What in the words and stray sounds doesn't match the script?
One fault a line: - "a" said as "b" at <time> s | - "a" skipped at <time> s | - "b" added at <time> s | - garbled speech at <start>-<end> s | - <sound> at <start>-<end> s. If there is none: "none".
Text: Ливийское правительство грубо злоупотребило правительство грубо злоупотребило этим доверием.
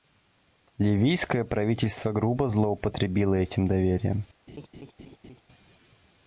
- "правительство грубо злоупотребило" skipped at 3.3 s
- laugh at 4.5-5.4 s